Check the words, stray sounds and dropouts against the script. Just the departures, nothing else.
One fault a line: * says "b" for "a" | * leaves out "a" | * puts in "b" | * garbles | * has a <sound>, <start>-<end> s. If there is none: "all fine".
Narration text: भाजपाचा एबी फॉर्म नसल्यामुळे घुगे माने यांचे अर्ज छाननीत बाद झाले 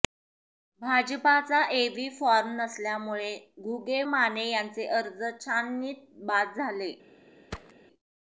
* has a thud, 7.5-7.7 s